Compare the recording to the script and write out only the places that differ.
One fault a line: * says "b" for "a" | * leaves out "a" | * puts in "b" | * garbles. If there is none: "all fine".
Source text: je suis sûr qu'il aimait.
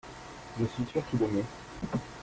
all fine